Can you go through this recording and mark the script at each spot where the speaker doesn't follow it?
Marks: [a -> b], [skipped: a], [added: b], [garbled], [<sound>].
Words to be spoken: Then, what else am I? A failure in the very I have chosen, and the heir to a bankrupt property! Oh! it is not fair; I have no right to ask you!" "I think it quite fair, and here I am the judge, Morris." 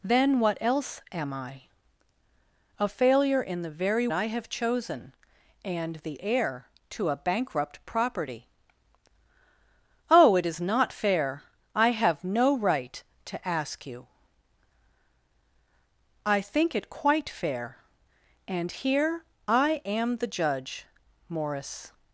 Then, what else am I? A failure in the very I have chosen, and the heir to a bankrupt property! Oh! it is not fair; I have no right to ask you!" "I think it quite fair, and here I am the judge, Morris."